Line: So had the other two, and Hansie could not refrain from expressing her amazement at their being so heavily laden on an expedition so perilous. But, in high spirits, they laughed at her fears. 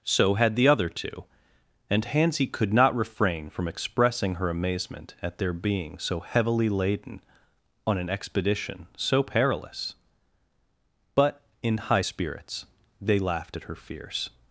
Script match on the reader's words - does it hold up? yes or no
yes